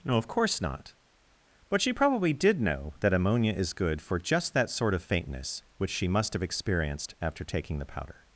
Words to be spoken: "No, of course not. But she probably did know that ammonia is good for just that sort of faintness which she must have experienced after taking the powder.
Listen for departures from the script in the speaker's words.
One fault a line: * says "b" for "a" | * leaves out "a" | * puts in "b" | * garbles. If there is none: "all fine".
all fine